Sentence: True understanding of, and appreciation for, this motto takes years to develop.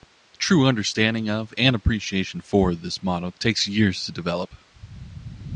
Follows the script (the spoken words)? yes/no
yes